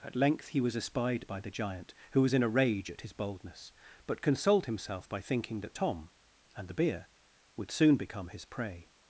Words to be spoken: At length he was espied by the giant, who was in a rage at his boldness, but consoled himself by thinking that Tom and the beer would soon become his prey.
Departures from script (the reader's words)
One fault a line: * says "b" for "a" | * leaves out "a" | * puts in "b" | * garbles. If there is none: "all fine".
all fine